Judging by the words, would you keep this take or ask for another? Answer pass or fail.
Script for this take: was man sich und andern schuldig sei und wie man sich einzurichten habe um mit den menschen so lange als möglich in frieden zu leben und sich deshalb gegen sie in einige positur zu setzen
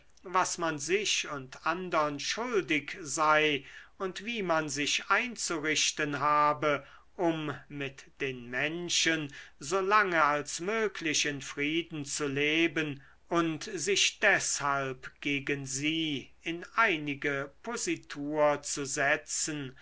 pass